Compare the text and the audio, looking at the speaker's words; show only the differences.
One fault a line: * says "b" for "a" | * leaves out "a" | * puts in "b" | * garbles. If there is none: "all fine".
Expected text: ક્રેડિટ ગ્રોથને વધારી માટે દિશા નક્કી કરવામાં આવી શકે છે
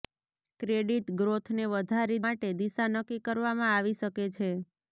all fine